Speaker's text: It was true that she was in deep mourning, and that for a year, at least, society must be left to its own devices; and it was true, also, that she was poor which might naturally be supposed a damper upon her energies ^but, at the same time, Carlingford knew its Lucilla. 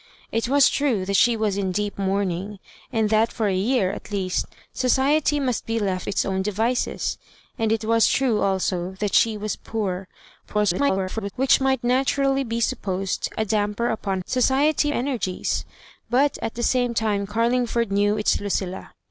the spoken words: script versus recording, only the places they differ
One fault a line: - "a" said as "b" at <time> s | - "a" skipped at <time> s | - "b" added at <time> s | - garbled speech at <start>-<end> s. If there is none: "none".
- "to" skipped at 6.1 s
- garbled speech at 10.4-11.3 s
- "her" said as "society" at 14.3 s